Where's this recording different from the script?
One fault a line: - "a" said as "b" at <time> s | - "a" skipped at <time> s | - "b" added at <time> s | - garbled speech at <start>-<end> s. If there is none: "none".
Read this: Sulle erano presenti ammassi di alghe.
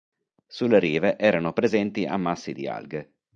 - "rive" added at 0.8 s